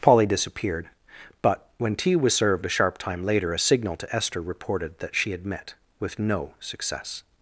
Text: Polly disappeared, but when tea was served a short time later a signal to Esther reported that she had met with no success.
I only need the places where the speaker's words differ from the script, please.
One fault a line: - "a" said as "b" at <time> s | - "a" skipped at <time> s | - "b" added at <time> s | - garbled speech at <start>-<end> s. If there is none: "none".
- "short" said as "sharp" at 2.7 s